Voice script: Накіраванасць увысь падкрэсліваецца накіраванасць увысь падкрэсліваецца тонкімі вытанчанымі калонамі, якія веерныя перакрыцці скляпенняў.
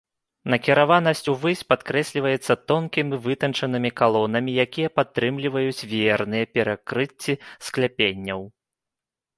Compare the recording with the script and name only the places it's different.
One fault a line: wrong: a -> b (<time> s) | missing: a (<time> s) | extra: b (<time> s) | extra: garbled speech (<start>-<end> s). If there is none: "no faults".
missing: накіраванасць увысь падкрэсліваецца (2.5 s)
extra: падтрымліваюць (5.0 s)